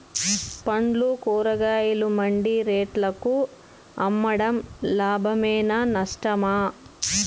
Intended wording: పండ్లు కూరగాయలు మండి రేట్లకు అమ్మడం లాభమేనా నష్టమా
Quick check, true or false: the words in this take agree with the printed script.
true